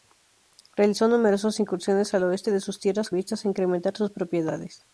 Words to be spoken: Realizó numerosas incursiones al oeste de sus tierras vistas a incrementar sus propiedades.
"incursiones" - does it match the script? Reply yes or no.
yes